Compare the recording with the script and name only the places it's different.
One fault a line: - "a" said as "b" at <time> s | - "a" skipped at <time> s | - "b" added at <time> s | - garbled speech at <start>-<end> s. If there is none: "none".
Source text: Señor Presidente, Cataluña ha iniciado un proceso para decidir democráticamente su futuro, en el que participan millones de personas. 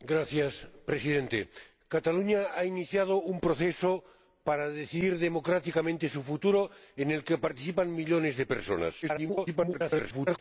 - garbled speech at 9.0-10.4 s